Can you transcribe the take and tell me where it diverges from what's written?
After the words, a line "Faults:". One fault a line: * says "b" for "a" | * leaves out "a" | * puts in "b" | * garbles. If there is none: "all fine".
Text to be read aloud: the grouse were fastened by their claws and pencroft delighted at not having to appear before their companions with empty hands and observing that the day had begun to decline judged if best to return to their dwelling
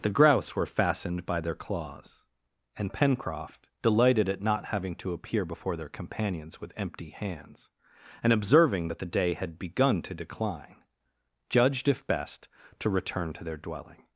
the grouse were fastened by their claws and pencroft delighted at not having to appear before their companions with empty hands and observing that the day had begun to decline judged if best to return to their dwelling
Faults:
all fine